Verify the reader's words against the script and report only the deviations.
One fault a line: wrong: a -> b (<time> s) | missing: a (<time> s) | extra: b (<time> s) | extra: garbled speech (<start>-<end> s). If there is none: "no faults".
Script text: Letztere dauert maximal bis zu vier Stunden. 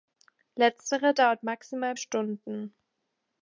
missing: bis zu vier (1.9 s)